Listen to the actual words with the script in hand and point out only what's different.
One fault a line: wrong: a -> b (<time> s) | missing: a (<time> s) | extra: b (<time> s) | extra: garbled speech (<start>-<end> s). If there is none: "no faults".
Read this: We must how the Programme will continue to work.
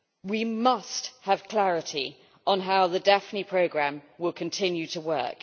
extra: have clarity on (1.2 s)
extra: Daphne (3.0 s)